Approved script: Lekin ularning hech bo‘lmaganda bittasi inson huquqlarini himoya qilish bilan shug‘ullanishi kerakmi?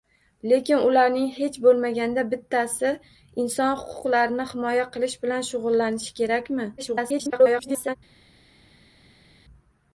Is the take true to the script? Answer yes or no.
no